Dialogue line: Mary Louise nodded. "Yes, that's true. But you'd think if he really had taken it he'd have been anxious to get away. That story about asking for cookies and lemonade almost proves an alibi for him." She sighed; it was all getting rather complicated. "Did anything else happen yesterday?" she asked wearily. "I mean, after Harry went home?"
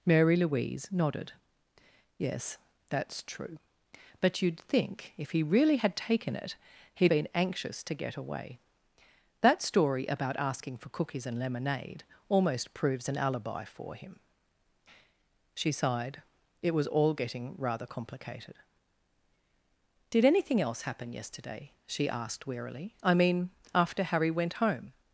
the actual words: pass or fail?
fail